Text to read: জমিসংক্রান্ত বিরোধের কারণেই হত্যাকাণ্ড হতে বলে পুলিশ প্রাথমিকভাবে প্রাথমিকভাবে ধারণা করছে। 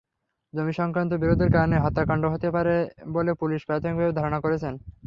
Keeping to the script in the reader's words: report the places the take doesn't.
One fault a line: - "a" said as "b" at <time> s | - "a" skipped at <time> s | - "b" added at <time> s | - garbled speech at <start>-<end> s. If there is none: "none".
- "পারে" added at 2.5 s
- "প্রাথমিকভাবে" skipped at 4.2 s